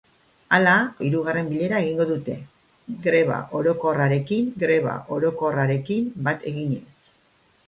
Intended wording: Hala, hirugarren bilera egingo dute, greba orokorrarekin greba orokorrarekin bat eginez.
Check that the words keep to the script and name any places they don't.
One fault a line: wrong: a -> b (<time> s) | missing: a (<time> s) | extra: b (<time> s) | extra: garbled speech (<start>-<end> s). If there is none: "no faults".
no faults